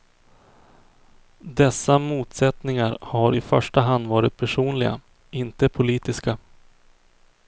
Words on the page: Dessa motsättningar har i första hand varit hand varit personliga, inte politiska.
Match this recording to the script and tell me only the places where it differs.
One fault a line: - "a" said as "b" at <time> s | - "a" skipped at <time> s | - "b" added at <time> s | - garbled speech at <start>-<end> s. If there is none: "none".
- "hand varit" skipped at 4.4 s